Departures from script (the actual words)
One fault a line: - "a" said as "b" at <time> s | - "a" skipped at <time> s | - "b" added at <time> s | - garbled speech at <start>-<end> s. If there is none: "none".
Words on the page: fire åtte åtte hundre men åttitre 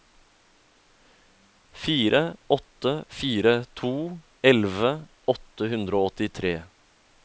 - "fire to elleve" added at 3.2 s
- "men" said as "og" at 6.0 s